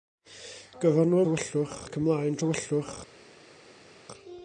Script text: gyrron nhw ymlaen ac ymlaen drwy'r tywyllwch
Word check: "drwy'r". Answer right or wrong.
wrong